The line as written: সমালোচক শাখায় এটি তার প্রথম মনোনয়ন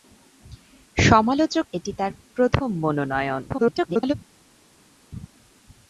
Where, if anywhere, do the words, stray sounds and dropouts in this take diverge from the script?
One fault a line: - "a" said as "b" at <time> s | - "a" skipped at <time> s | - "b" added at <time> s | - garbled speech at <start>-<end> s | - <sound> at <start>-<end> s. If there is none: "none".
- "শাখায়" skipped at 1.6 s
- garbled speech at 3.5-4.1 s